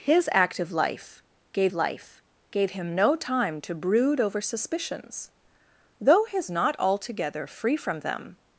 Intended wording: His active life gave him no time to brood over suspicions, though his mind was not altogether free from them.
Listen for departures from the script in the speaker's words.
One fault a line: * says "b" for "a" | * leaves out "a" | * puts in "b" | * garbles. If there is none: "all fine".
* puts in "life gave"
* leaves out "mind was"